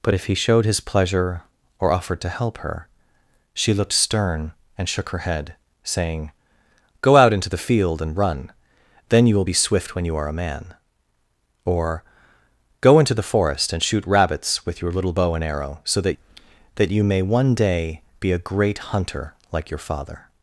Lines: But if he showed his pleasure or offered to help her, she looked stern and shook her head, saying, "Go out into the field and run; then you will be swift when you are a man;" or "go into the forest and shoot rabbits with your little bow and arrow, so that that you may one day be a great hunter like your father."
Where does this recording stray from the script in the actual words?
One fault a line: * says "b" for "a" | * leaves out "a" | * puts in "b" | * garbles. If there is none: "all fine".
all fine